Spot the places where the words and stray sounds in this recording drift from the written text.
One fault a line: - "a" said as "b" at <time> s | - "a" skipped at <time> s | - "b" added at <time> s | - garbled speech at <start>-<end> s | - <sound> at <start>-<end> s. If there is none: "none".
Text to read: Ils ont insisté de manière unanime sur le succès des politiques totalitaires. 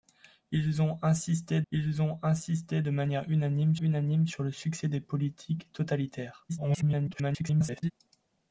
- "ils ont insisté" added at 1.7 s
- "unanime" added at 3.8 s
- garbled speech at 6.5-7.9 s